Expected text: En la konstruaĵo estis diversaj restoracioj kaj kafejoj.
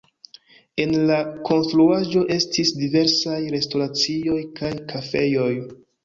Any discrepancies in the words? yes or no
no